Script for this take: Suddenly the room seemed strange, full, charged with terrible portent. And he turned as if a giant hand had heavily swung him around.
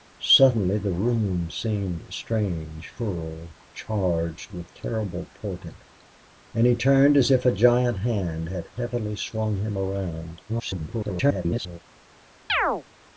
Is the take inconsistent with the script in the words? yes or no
yes